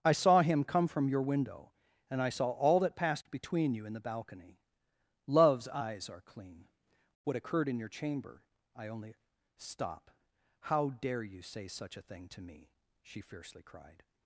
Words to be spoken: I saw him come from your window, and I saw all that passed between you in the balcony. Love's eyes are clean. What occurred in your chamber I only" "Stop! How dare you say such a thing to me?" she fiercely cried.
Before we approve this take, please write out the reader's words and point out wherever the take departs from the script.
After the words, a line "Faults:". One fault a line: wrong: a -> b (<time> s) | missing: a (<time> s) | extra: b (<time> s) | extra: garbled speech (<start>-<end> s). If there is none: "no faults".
I saw him come from your window, and I saw all that passed between you in the balcony. Love's eyes are clean. What occurred in your chamber I only" "Stop! How dare you say such a thing to me?" she fiercely cried.
Faults:
no faults